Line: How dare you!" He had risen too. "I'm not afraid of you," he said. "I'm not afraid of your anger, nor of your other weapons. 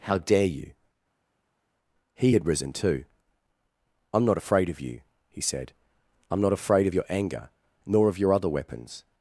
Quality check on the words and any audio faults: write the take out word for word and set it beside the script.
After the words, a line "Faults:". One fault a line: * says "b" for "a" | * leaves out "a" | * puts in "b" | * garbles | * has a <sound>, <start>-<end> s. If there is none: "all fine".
How dare you!" He had risen too. "I'm not afraid of you," he said. "I'm not afraid of your anger, nor of your other weapons.
Faults:
all fine